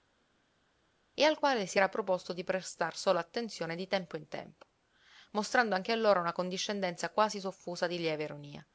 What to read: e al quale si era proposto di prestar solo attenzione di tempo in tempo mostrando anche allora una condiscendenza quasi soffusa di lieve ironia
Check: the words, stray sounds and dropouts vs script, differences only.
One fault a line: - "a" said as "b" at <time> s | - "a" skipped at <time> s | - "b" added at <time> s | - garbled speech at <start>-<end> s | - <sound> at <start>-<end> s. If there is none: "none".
none